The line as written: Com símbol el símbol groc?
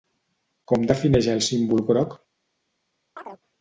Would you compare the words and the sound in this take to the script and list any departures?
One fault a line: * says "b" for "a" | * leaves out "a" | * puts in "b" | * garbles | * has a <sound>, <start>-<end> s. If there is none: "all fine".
* says "defineix" for "símbol"
* has a chirp, 3.2-3.4 s